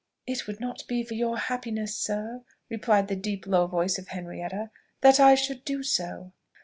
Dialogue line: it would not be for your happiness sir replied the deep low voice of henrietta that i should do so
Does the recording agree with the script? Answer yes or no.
yes